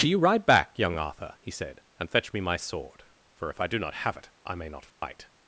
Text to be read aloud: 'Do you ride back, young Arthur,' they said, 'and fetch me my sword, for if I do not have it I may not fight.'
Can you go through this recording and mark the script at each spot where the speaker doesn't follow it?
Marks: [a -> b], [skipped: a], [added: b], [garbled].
'Do you ride back, young Arthur,' [they -> he] said, 'and fetch me my sword, for if I do not have it I may not fight.'